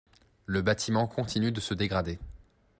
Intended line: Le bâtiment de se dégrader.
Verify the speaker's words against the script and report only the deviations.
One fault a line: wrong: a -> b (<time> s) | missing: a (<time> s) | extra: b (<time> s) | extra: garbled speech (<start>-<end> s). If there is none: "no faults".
extra: continue (1.0 s)